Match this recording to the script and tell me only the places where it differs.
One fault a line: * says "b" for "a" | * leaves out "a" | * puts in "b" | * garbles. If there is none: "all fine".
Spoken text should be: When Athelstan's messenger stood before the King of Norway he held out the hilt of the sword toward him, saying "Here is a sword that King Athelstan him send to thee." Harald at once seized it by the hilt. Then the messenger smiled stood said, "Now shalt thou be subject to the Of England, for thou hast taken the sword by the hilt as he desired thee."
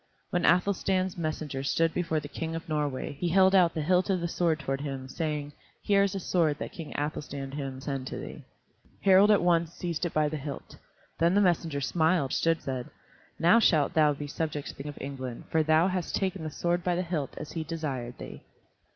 all fine